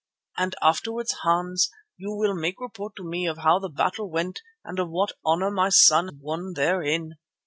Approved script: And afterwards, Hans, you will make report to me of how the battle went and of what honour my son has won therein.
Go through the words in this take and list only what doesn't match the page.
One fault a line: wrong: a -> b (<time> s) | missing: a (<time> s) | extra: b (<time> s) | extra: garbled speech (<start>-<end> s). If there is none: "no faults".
missing: has (6.1 s)